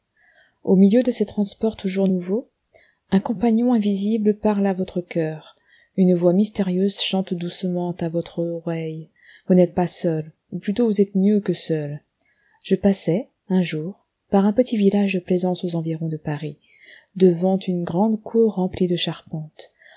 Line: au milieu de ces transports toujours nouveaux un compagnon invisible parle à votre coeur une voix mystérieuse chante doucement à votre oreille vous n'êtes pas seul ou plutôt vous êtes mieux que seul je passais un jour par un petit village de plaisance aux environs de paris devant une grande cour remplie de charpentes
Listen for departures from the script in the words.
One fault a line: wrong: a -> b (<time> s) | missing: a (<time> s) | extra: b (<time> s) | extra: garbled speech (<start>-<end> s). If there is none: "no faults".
no faults